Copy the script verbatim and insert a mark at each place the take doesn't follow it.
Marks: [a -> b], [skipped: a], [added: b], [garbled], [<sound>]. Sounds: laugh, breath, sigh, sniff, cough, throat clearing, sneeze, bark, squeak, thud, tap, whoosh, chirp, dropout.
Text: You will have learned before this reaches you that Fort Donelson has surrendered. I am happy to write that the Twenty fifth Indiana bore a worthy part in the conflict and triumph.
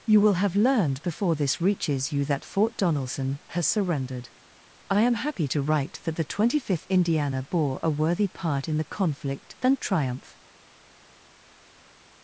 You will have learned before this reaches you that Fort Donelson has surrendered. I am happy to write that the Twenty fifth Indiana bore a worthy part in the conflict and triumph.